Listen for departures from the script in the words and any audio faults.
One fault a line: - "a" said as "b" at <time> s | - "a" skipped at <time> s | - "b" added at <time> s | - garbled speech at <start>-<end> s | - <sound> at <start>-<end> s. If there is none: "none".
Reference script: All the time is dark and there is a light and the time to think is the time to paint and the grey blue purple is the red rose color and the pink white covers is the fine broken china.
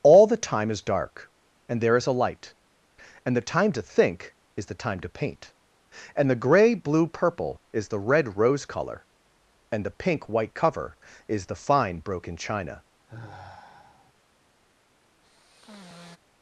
- "covers" said as "cover" at 10.5 s
- sigh at 13.1-14.1 s
- sigh at 15.2-16.2 s